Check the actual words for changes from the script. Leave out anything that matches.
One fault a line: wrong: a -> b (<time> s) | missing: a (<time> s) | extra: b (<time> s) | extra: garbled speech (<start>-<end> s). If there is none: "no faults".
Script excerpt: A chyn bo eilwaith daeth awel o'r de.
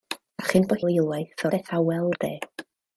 no faults